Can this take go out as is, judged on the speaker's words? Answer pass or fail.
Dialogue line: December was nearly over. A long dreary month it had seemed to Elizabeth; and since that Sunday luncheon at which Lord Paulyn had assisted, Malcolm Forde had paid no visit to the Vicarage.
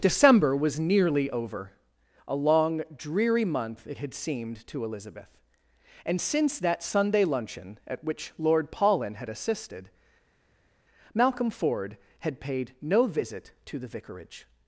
pass